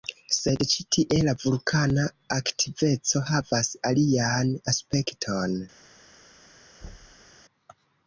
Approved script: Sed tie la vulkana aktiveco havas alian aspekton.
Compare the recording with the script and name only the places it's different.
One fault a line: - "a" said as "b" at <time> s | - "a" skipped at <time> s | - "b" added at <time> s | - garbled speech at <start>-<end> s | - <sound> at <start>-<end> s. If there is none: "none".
- "ĉi" added at 0.7 s
- thud at 6.8-7.3 s